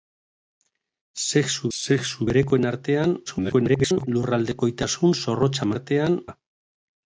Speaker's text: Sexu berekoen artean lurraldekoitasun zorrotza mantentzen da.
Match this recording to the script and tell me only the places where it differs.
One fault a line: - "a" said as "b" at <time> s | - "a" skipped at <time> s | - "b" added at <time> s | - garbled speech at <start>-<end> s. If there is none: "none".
- "sexu" added at 1.8 s
- garbled speech at 3.3-4.1 s
- "mantentzen" said as "artean" at 5.7 s